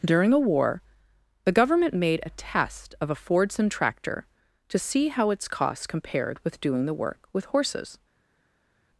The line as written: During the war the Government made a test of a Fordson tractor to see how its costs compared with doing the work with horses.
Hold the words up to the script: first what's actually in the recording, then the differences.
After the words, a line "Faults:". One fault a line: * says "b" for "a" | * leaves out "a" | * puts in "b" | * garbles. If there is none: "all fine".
During a war the Government made a test of a Fordson tractor to see how its costs compared with doing the work with horses.
Faults:
* says "a" for "the"